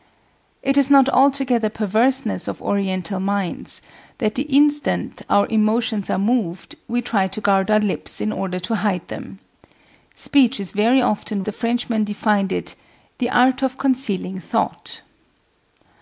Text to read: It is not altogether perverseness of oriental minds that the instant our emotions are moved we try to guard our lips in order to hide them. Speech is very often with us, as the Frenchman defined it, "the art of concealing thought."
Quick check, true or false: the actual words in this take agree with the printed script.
false